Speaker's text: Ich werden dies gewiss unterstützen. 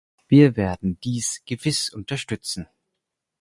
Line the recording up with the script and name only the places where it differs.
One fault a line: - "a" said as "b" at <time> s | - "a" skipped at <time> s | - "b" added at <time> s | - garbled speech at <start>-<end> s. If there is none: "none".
- "Ich" said as "Wir" at 0.3 s